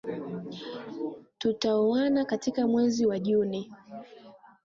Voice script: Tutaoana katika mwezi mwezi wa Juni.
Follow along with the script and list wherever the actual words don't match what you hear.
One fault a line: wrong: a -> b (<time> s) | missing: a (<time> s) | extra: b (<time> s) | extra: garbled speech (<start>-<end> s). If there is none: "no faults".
missing: mwezi (3.0 s)